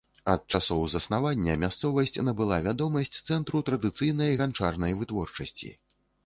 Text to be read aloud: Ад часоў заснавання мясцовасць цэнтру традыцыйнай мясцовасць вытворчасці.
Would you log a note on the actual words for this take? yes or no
yes